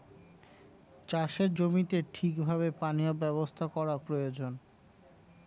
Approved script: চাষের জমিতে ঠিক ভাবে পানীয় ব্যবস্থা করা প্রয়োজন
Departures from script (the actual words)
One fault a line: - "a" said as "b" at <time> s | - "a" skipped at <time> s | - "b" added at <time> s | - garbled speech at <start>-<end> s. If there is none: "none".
none